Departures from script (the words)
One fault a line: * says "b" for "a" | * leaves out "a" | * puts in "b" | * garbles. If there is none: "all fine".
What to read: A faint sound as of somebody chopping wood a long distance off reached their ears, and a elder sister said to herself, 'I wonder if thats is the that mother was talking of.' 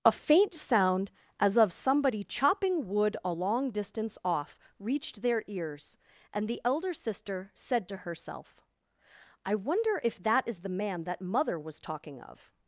* says "the" for "a"
* says "that" for "thats"
* puts in "man"